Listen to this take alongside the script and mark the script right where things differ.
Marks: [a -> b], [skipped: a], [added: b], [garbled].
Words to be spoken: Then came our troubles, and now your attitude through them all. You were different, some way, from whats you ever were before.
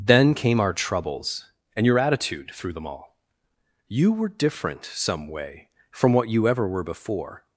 Then came our troubles, and [skipped: now] your attitude through them all. You were different, some way, from [whats -> what] you ever were before.